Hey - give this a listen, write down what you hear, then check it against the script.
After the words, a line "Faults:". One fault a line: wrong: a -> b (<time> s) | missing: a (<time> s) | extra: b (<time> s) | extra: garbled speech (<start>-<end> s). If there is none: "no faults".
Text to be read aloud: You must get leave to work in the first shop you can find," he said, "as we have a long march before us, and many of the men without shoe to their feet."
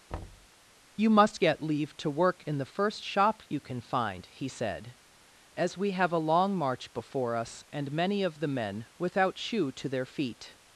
You must get leave to work in the first shop you can find," he said, "as we have a long march before us, and many of the men without shoe to their feet."
Faults:
no faults